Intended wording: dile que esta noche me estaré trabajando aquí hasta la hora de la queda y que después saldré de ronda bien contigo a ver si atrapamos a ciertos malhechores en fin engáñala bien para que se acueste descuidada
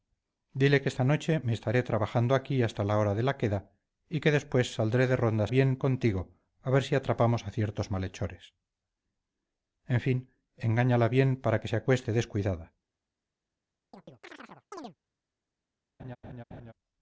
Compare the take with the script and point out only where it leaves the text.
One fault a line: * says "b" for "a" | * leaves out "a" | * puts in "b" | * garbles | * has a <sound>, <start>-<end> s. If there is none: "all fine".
* has a chirp, 13.9-15.0 s
* has a laugh, 16.0-16.7 s